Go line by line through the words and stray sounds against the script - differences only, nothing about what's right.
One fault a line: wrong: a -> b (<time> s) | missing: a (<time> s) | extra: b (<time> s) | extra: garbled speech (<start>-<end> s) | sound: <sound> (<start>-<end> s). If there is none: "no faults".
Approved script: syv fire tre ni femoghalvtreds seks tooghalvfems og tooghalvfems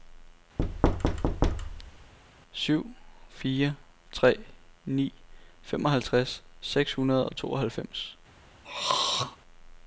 sound: thud (0.6-2.1 s)
wrong: tooghalvfems -> hundrede (6.9 s)
sound: throat clearing (8.6-9.4 s)